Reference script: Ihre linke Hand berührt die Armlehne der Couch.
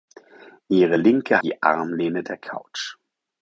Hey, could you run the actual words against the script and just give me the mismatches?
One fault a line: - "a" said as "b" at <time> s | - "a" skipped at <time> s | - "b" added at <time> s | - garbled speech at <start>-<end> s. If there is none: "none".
- "Hand berührt" skipped at 1.4 s